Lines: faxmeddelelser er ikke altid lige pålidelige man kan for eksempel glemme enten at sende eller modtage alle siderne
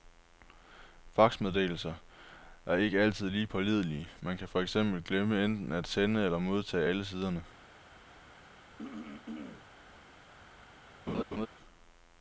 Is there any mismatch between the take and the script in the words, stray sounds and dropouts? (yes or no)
yes